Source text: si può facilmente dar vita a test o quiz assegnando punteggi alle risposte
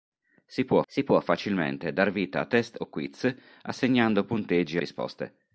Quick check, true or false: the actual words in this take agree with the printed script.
false